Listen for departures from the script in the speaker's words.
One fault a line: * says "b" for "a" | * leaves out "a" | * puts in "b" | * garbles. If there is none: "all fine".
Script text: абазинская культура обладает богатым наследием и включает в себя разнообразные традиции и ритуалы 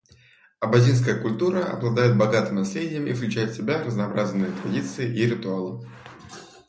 all fine